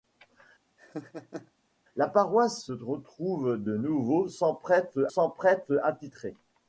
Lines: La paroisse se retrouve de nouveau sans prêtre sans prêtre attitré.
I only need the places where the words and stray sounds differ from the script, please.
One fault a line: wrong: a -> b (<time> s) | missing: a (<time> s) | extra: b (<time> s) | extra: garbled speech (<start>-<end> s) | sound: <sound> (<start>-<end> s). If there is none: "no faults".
sound: laugh (0.8-1.5 s)